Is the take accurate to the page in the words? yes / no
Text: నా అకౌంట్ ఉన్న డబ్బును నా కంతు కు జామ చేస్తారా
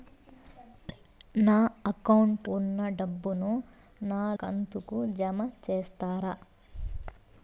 yes